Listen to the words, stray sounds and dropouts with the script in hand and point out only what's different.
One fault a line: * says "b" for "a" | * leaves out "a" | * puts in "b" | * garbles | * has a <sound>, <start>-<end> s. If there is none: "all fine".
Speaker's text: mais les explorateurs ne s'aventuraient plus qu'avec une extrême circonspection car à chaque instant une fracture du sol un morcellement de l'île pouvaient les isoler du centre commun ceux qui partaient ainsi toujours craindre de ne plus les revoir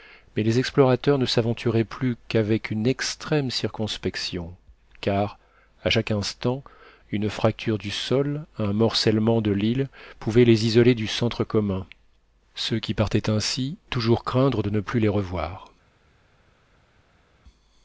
all fine